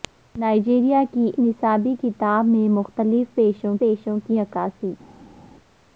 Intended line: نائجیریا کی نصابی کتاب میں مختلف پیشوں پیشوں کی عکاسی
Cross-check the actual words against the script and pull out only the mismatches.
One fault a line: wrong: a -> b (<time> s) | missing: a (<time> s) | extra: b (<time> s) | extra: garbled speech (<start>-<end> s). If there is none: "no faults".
no faults